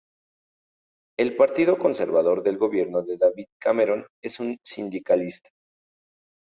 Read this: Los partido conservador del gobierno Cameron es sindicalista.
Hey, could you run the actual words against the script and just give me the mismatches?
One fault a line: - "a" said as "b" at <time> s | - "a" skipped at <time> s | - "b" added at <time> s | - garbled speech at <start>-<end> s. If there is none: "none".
- "Los" said as "El" at 1.2 s
- "de David" added at 3.0 s
- "un" added at 4.4 s